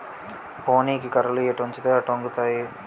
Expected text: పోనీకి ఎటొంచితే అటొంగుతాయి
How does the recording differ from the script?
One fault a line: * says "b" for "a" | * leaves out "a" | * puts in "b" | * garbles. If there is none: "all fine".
* puts in "కర్రలు"